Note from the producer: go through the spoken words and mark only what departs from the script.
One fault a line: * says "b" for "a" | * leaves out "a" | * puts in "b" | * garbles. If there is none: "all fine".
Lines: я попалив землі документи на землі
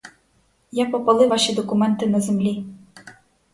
* says "ваші" for "землі"